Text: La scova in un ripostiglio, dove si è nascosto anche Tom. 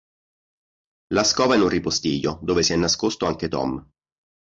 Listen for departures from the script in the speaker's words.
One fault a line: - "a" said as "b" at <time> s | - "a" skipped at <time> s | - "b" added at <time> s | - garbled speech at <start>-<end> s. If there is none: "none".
none